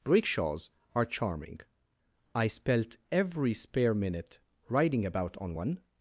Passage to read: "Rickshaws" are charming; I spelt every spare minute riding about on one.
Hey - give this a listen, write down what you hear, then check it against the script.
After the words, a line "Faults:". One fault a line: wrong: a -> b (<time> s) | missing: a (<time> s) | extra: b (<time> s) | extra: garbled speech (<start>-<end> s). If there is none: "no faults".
"Rickshaws" are charming; I spelt every spare minute riding about on one.
Faults:
no faults